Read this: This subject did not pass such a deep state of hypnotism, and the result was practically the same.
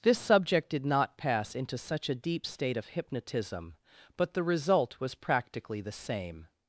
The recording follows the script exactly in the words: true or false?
false